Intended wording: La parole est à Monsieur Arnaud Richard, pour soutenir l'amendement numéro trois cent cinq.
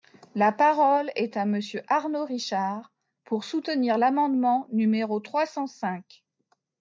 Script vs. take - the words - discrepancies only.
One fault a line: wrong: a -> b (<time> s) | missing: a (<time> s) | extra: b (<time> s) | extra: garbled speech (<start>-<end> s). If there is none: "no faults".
no faults